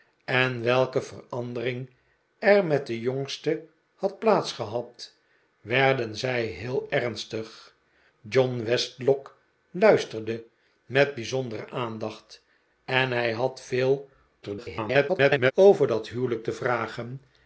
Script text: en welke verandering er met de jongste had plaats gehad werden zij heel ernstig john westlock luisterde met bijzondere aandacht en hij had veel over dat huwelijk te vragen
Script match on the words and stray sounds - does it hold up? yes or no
no